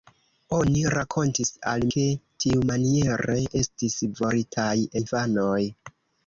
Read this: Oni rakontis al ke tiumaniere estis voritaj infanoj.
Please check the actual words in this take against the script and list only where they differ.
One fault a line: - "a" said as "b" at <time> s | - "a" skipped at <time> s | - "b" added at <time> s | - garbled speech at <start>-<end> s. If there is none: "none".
none